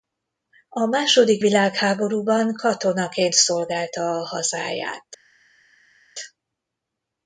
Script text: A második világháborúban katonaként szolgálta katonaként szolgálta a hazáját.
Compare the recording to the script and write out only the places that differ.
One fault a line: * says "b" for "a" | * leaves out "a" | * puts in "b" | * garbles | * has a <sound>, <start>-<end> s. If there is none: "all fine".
* leaves out "katonaként szolgálta"